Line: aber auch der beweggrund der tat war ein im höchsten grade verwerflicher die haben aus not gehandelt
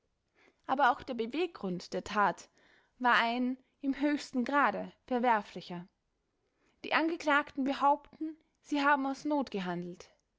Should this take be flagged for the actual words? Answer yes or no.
yes